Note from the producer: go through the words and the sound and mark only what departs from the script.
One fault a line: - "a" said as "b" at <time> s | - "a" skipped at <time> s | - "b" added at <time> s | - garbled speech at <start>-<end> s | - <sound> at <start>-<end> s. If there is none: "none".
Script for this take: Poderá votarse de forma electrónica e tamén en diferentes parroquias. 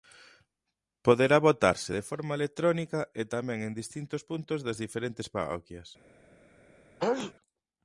- "distintos puntos das" added at 3.8 s
- sneeze at 7.0-7.3 s